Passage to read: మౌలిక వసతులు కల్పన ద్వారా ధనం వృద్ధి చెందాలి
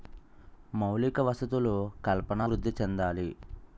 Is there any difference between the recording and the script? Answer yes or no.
yes